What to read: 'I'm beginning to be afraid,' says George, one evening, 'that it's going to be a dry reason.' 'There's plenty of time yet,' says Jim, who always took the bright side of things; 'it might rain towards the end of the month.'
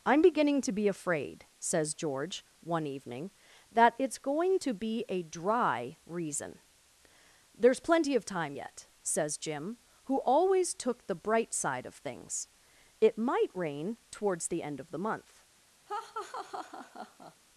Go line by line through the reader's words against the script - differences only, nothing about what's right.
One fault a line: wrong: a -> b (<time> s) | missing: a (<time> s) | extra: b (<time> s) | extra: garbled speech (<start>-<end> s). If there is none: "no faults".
no faults